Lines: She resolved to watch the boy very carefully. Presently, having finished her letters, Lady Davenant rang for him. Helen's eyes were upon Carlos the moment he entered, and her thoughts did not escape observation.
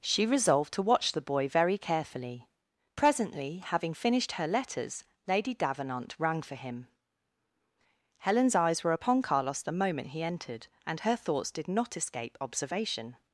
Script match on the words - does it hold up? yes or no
yes